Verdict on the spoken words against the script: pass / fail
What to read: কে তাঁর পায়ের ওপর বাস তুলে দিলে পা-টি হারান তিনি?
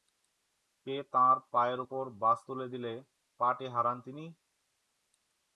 pass